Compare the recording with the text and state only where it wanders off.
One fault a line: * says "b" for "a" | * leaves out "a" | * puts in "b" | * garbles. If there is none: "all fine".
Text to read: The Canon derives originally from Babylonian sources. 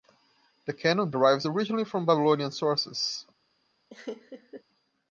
all fine